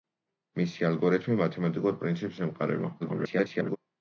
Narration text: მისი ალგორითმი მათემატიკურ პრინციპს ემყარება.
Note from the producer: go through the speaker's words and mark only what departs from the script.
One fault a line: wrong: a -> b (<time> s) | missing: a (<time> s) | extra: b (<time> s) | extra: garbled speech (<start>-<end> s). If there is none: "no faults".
extra: garbled speech (3.0-3.8 s)